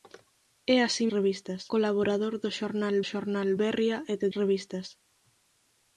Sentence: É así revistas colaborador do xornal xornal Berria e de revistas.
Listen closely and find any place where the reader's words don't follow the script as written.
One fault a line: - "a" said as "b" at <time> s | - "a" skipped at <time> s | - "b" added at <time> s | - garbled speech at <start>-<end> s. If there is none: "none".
none